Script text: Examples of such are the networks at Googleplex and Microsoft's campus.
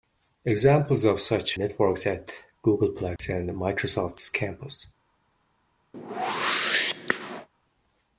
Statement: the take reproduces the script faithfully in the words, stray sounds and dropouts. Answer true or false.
false